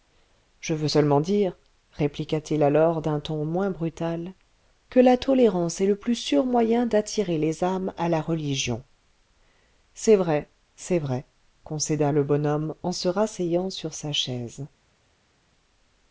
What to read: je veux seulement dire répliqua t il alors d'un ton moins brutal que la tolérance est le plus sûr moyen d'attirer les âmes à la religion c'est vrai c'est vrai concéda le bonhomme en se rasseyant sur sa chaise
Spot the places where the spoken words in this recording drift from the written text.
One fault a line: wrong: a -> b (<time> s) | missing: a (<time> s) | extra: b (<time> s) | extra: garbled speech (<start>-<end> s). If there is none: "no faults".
no faults